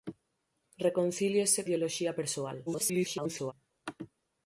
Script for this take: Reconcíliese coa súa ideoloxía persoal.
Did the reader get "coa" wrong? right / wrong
wrong